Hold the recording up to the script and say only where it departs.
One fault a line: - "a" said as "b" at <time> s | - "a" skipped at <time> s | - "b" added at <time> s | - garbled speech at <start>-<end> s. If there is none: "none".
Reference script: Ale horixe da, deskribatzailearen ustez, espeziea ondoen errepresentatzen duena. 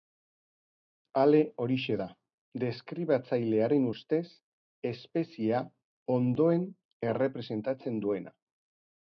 none